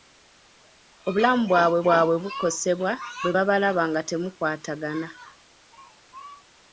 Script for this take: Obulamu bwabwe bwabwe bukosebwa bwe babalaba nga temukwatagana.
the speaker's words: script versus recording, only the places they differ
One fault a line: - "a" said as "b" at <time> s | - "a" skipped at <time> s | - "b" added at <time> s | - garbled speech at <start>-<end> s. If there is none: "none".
none